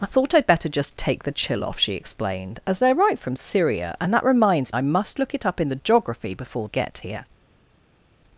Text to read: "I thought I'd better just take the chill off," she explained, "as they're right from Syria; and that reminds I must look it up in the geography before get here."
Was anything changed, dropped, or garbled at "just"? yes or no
no